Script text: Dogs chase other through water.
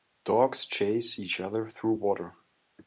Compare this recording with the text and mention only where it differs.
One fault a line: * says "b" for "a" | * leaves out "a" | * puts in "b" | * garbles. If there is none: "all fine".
* puts in "each"